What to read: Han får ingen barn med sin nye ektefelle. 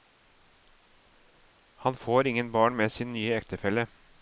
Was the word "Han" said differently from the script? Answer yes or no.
no